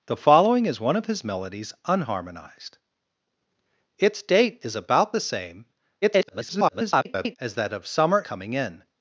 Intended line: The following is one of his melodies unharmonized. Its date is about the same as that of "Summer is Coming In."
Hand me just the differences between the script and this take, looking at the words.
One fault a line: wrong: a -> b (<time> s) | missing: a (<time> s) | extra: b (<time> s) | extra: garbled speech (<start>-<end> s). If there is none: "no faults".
extra: garbled speech (6.0-7.4 s)
missing: is (8.2 s)